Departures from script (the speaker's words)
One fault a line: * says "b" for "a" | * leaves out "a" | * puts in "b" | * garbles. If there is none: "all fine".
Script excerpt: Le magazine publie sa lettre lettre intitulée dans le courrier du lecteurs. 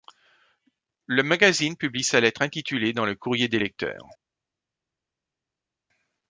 * leaves out "lettre"
* says "des" for "du"